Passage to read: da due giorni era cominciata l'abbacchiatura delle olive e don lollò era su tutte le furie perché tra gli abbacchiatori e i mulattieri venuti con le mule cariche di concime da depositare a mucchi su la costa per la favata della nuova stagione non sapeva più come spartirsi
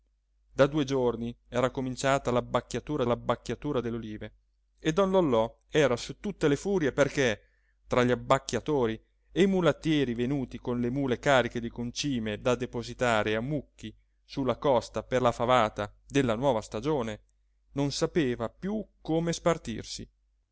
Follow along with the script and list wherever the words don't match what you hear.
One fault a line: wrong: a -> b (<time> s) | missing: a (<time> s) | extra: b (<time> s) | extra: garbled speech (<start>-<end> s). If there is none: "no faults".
extra: l'abbacchiatura (3.1 s)